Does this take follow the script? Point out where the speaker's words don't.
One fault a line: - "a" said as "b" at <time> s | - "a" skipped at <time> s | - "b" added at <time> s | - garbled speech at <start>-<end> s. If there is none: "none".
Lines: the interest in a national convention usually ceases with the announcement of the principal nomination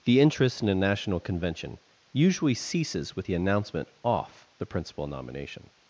- "of" said as "off" at 4.0 s